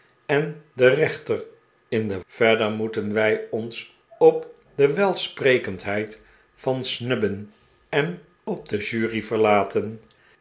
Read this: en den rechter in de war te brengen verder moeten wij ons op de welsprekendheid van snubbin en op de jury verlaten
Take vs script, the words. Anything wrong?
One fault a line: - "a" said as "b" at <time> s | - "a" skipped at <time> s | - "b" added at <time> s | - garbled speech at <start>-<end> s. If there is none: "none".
- "war te brengen" skipped at 2.2 s